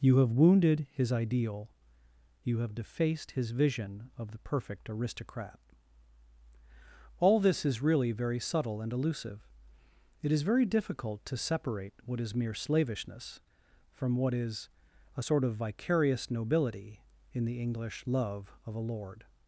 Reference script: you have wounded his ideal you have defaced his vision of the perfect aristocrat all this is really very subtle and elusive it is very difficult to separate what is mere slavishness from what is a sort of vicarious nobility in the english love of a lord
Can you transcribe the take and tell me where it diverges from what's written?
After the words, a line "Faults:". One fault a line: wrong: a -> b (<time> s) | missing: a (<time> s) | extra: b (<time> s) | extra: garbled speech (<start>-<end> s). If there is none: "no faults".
you have wounded his ideal you have defaced his vision of the perfect aristocrat all this is really very subtle and elusive it is very difficult to separate what is mere slavishness from what is a sort of vicarious nobility in the english love of a lord
Faults:
no faults